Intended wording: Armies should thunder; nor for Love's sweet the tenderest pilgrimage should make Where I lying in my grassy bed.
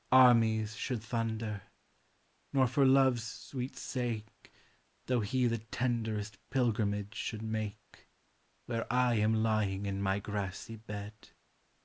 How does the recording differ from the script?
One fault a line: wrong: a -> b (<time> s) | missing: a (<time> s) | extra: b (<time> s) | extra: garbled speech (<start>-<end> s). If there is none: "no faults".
extra: sake Though he (3.8 s)
extra: am (9.2 s)